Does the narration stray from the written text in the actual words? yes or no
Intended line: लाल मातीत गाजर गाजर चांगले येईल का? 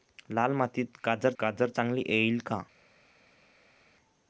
no